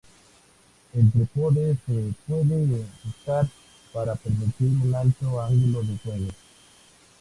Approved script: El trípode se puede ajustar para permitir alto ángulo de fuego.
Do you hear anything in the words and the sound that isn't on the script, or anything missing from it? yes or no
yes